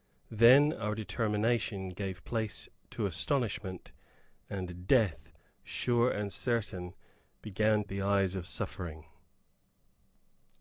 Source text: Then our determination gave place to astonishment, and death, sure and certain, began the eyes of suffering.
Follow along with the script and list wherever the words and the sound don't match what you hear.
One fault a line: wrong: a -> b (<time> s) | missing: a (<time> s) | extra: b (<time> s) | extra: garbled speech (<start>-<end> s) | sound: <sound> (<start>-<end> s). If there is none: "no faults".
no faults